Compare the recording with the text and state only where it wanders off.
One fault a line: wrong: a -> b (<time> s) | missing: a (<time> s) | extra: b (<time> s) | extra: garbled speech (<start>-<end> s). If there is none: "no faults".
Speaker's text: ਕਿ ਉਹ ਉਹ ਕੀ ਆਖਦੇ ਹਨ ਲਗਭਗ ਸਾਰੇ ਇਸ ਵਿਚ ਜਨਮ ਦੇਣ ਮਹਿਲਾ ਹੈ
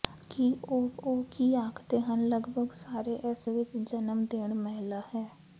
no faults